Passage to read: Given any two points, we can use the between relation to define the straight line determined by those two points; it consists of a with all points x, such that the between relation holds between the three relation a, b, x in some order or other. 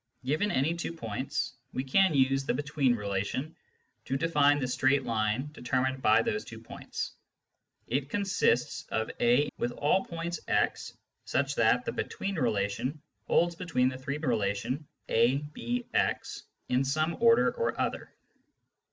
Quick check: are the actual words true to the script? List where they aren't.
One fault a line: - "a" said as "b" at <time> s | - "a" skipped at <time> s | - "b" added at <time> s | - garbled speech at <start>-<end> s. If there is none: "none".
none